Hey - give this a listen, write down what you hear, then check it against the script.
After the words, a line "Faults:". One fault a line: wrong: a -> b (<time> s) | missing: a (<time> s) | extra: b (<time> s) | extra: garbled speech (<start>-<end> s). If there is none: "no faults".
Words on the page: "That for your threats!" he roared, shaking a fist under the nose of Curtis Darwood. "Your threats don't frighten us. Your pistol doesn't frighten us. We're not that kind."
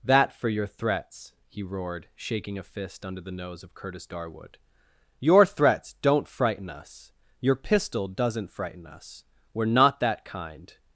"That for your threats!" he roared, shaking a fist under the nose of Curtis Darwood. "Your threats don't frighten us. Your pistol doesn't frighten us. We're not that kind."
Faults:
no faults